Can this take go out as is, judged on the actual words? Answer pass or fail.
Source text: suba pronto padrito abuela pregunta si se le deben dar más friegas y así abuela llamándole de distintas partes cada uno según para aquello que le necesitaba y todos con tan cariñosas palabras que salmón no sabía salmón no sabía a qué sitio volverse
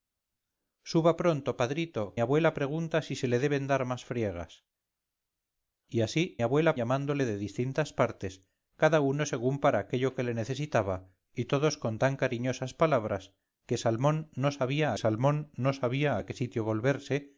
pass